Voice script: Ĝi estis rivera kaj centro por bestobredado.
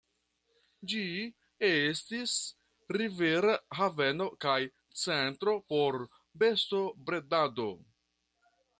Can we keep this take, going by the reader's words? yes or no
no